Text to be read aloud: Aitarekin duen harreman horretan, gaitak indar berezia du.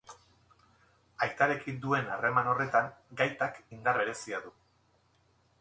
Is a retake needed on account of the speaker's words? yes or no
no